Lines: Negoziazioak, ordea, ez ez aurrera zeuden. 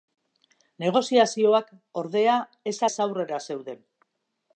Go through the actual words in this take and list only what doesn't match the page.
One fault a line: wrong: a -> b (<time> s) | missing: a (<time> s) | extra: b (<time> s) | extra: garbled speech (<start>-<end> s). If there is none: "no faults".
no faults